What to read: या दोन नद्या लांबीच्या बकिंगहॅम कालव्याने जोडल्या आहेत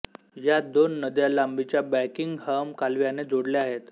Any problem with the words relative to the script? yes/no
no